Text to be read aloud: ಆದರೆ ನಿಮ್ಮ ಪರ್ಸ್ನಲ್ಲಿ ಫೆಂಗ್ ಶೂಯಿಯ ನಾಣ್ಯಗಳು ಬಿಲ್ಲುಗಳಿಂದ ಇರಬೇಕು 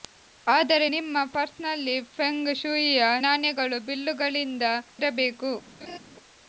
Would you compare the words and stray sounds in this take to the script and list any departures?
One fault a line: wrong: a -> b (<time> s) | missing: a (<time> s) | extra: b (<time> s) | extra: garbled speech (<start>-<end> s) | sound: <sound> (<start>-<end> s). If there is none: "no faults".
sound: laugh (5.8-6.0 s)